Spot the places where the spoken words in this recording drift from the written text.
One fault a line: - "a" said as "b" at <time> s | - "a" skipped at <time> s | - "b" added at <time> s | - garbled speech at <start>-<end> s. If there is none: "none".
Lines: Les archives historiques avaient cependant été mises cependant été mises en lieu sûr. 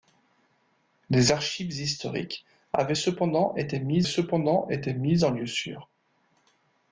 none